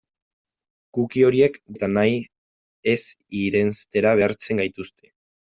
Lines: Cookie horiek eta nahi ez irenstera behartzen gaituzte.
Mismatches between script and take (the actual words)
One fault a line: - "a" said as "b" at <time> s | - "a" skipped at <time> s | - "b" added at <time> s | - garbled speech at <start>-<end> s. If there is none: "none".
none